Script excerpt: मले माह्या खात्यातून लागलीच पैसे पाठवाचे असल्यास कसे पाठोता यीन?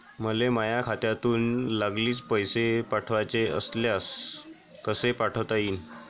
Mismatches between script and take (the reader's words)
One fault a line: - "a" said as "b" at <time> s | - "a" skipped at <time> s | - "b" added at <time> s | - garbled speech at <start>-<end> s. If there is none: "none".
none